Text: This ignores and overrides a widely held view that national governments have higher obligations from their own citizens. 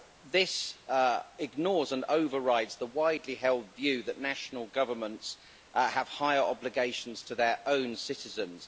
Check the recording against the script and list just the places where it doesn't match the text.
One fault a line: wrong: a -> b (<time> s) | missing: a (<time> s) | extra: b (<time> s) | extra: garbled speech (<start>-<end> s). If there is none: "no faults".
wrong: a -> the (2.8 s)
wrong: from -> to (7.2 s)